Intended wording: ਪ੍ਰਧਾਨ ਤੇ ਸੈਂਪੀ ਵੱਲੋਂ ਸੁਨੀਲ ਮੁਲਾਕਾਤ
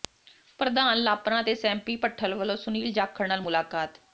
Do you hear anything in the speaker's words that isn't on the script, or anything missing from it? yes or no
yes